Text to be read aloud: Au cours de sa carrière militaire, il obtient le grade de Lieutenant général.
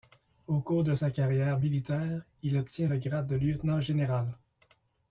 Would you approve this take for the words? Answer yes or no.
yes